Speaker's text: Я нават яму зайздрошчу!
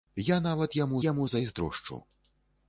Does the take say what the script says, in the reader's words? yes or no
no